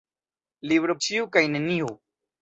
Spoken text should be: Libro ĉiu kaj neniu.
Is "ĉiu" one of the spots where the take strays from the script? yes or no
no